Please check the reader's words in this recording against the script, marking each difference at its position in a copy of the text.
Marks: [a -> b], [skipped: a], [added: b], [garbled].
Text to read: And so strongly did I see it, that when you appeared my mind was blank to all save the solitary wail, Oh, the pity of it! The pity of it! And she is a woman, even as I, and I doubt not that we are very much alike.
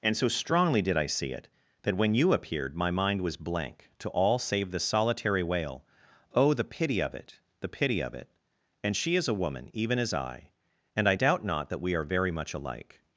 And so strongly did I see it, that when you appeared my mind was blank to all save the solitary wail, Oh, the pity of it! The pity of it! And she is a woman, even as I, and I doubt not that we are very much alike.